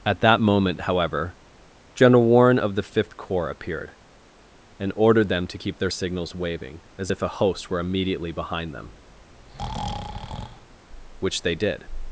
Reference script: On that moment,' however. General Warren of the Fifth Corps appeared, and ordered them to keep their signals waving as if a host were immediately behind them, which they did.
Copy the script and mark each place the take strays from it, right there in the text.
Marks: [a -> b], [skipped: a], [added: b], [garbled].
[On -> At] that moment,' however. General Warren of the Fifth Corps appeared, and ordered them to keep their signals waving as if a host were immediately behind them, which they did.